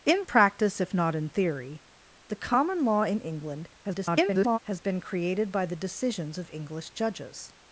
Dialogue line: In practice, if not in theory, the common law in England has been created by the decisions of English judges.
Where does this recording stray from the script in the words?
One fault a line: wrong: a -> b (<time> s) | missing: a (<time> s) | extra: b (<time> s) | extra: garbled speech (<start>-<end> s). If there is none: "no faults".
extra: garbled speech (3.8-4.6 s)